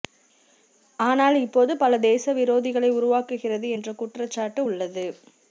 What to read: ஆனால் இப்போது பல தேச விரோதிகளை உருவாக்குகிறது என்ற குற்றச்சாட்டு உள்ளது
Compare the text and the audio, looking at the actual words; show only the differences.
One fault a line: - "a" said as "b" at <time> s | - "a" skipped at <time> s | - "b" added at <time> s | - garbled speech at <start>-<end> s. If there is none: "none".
none